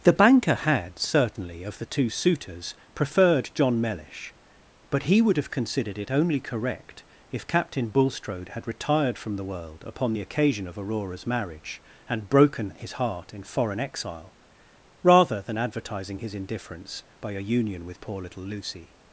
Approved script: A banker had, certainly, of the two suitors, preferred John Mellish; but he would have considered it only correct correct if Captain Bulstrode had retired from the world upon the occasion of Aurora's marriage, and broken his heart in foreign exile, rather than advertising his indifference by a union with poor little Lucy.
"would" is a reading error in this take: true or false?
false